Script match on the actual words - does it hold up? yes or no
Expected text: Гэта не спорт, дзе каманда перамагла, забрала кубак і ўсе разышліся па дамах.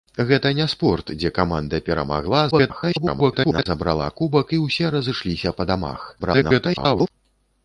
no